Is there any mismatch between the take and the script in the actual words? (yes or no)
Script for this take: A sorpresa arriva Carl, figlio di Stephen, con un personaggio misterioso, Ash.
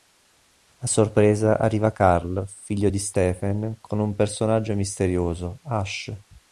no